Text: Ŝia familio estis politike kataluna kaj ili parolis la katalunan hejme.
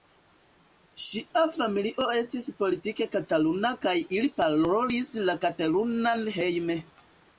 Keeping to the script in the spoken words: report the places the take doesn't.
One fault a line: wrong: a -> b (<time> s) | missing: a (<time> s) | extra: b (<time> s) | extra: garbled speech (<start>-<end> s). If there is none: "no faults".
no faults